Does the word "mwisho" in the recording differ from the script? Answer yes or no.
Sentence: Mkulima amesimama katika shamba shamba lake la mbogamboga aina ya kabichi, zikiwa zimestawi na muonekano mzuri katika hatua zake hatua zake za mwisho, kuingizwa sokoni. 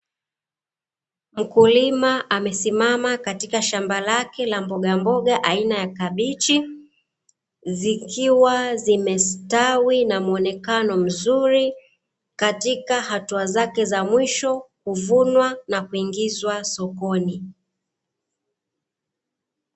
yes